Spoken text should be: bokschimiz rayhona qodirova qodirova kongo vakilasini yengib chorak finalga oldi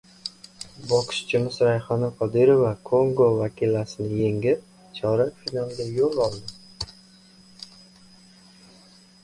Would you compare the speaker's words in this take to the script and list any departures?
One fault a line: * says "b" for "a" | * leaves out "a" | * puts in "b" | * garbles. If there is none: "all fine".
* leaves out "qodirova"
* puts in "yo‘l"